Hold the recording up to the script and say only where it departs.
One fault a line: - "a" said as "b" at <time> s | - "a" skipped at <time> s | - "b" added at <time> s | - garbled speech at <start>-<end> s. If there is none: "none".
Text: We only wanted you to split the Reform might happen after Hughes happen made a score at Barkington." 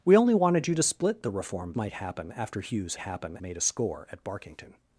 none